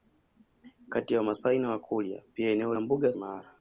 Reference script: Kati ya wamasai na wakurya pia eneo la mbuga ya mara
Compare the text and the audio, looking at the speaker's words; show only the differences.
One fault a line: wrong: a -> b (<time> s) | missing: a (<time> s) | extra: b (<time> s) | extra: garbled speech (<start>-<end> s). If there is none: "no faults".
no faults